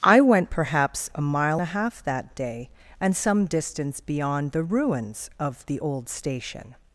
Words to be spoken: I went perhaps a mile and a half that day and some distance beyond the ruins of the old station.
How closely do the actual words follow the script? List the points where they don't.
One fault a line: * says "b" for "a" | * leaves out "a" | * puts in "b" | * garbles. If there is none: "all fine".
* leaves out "and"